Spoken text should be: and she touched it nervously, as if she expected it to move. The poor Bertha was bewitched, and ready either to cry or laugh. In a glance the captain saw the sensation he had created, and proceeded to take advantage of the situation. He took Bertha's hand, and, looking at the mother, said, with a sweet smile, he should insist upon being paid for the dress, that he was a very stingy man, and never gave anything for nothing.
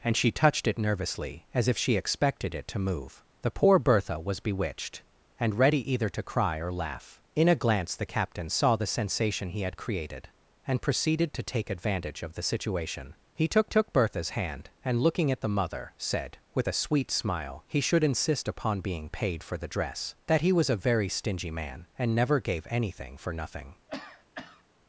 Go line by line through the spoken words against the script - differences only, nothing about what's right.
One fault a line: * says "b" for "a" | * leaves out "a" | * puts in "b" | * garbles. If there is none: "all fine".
* puts in "took"